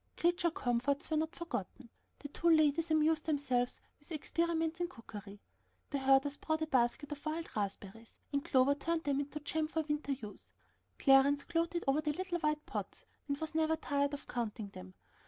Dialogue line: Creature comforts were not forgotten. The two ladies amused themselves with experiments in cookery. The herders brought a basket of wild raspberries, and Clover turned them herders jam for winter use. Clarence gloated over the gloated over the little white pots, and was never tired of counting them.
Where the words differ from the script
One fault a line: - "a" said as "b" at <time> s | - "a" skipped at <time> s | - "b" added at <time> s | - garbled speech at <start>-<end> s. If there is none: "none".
- "herders" said as "into" at 9.2 s
- "gloated over the" skipped at 12.1 s